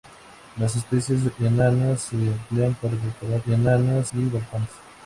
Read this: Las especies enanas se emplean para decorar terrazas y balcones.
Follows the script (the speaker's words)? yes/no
no